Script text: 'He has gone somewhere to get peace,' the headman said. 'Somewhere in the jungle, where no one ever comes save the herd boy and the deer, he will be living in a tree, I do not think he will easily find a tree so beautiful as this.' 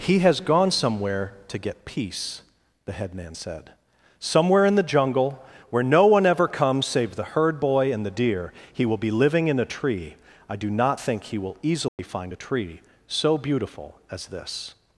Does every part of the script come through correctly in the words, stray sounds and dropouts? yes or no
no